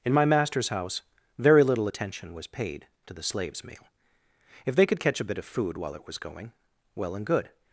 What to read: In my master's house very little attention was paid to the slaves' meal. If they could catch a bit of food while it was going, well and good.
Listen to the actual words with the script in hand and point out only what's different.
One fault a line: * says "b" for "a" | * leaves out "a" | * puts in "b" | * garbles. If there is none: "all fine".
all fine